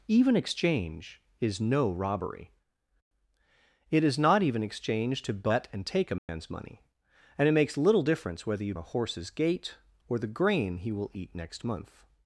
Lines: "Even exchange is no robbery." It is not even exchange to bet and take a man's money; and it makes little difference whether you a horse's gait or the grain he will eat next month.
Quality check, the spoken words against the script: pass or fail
pass